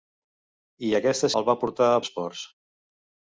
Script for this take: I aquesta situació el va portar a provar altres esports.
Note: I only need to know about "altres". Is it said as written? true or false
false